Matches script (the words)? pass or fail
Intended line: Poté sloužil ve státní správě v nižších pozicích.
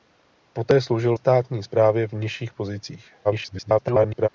fail